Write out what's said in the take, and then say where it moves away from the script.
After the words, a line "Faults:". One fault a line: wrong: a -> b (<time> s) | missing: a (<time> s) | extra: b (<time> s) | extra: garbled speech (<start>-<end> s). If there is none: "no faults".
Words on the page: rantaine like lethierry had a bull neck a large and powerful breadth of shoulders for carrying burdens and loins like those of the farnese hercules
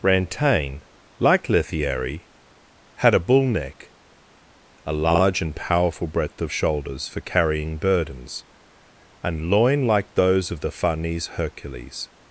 rantaine like lethierry had a bull neck a large and powerful breadth of shoulders for carrying burdens and loin like those of the farnese hercules
Faults:
wrong: loins -> loin (9.5 s)